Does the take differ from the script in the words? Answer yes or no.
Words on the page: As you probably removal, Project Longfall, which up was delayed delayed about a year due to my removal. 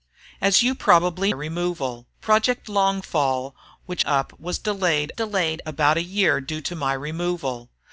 no